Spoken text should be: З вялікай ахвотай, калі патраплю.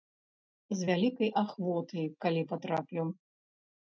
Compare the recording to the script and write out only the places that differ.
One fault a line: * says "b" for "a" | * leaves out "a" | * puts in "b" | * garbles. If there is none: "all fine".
all fine